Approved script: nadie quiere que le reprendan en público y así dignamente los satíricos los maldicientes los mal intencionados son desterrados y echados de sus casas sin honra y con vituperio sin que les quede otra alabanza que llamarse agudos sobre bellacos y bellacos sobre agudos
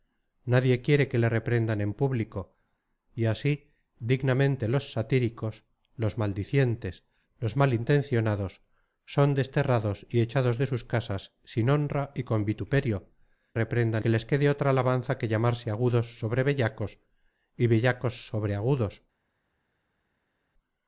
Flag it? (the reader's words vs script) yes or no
yes